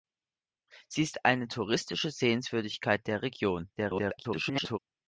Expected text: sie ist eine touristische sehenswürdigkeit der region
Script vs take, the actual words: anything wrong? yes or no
yes